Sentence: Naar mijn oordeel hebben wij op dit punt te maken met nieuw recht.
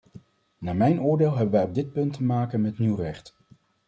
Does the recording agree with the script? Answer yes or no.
yes